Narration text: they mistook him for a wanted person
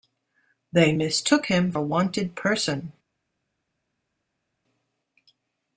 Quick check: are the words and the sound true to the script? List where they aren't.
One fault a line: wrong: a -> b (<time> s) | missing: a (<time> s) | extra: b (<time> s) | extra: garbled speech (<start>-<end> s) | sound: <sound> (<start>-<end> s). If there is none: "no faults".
missing: for (1.7 s)